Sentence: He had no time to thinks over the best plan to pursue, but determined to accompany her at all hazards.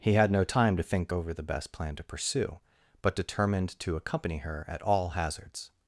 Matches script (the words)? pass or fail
fail